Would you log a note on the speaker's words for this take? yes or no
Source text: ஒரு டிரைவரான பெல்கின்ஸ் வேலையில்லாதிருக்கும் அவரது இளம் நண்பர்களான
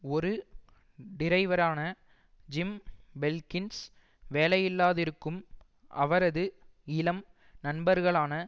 yes